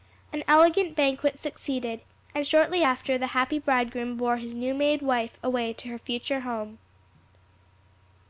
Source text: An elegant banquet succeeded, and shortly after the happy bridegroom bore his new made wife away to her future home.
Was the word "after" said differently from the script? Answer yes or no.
no